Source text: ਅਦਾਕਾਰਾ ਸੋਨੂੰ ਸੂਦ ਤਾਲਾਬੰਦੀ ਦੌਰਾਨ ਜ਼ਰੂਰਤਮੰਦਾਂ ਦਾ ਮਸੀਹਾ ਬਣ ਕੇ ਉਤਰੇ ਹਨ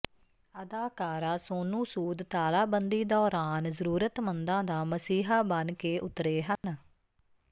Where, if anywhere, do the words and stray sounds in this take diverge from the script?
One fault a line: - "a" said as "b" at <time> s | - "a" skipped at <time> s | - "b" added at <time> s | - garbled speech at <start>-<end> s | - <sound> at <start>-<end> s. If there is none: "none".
- dropout at 6.6-6.6 s